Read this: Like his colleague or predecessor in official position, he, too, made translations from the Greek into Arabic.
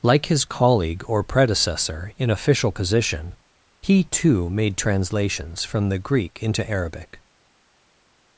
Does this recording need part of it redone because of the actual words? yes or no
no